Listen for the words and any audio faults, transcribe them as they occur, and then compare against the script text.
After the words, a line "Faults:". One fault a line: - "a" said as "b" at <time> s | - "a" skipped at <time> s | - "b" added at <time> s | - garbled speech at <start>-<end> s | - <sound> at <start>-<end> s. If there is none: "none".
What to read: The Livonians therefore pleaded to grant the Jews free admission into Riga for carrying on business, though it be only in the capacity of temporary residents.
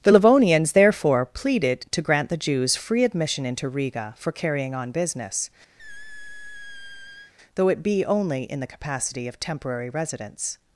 The Livonians therefore pleaded to grant the Jews free admission into Riga for carrying on business, though it be only in the capacity of temporary residents.
Faults:
- squeak at 5.8-7.3 s